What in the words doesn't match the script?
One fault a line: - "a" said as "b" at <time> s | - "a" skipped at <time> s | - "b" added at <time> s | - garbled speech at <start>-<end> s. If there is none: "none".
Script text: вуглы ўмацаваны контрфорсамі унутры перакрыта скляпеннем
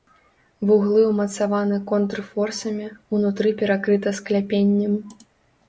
none